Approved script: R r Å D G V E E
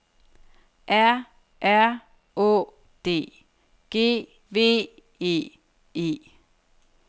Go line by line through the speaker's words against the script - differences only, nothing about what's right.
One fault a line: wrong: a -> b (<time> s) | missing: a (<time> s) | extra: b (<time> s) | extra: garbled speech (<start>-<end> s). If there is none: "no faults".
no faults